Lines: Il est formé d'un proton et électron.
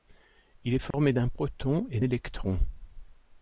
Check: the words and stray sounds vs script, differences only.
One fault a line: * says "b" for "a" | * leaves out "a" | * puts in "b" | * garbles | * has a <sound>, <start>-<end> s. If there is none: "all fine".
* has a dropout, 0.9-0.9 s